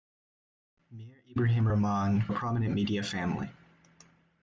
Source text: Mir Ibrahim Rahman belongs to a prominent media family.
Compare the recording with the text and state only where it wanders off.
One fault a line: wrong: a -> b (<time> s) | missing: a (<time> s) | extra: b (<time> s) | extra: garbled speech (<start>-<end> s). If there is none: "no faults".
missing: belongs to (2.3 s)